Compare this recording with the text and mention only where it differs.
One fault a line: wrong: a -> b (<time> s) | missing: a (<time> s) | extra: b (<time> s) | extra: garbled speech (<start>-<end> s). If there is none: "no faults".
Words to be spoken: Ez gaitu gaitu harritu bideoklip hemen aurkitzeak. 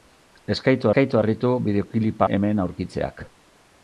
no faults